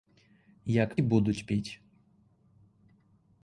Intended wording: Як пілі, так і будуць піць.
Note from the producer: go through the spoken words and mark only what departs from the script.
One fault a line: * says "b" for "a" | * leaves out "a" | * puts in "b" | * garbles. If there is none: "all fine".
* leaves out "пілі так"